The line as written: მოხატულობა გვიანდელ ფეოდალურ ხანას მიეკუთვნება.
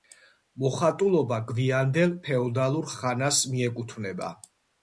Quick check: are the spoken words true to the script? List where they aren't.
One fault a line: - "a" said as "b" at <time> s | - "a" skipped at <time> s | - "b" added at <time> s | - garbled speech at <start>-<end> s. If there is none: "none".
none